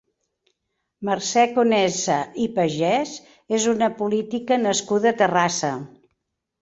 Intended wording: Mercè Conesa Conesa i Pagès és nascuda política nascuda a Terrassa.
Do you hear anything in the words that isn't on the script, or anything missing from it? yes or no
yes